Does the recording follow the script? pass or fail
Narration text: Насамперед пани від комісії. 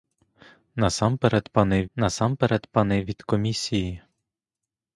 fail